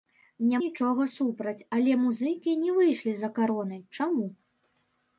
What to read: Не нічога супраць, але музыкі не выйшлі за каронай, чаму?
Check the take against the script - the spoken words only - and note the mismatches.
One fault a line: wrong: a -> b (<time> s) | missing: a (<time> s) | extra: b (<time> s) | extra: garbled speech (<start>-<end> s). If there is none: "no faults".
no faults